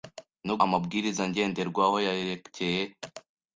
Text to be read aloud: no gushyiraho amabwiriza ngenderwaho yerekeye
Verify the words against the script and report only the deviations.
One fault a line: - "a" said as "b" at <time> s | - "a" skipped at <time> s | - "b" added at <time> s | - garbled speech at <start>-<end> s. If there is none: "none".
- "gushyiraho" skipped at 0.6 s